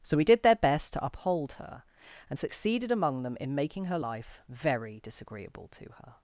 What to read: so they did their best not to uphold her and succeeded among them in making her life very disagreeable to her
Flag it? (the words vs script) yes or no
yes